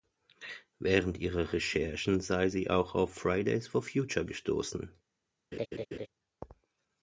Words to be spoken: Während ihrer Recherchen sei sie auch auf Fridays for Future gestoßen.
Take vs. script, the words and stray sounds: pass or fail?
fail